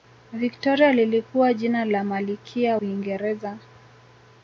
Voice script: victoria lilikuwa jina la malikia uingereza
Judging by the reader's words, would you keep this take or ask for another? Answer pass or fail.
pass